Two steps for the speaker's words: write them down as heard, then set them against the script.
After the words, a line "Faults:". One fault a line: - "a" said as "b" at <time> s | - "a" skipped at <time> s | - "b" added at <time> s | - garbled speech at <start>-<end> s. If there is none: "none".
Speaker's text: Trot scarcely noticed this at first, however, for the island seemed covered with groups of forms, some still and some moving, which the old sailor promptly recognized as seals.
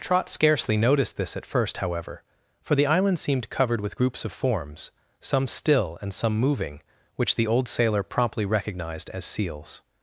Trot scarcely noticed this at first, however, for the island seemed covered with groups of forms, some still and some moving, which the old sailor promptly recognized as seals.
Faults:
none